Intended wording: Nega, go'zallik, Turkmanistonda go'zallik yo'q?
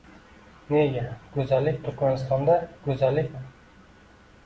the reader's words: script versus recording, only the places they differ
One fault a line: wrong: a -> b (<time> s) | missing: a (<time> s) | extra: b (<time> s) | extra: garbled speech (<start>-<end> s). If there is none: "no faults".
no faults